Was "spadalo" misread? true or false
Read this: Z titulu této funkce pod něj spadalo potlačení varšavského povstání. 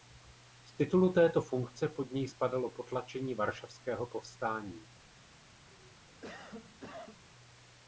false